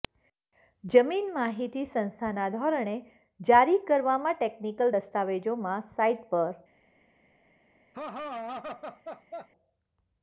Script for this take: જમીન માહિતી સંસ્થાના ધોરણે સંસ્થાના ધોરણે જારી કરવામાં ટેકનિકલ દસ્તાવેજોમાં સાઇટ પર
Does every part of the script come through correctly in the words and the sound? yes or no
no